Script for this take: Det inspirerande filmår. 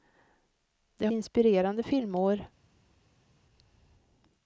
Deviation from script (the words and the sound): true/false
false